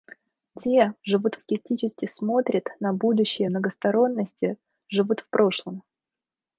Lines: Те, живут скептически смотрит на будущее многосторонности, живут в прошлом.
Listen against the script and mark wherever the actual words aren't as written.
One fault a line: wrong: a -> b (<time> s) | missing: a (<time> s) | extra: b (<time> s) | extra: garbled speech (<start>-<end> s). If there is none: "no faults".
no faults